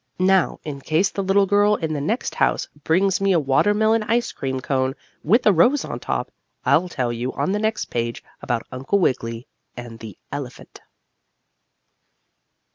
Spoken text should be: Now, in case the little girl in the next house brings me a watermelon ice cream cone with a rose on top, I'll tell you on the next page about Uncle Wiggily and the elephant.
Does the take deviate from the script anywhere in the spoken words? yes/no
no